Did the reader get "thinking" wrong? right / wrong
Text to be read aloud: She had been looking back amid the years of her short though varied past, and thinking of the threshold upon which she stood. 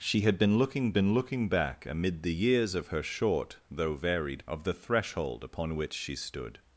wrong